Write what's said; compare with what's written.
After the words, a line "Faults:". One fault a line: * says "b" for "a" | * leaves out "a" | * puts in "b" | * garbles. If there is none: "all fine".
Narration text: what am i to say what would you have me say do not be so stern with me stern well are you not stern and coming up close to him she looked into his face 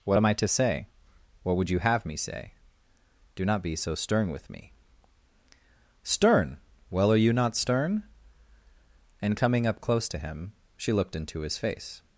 what am i to say what would you have me say do not be so stern with me stern well are you not stern and coming up close to him she looked into his face
Faults:
all fine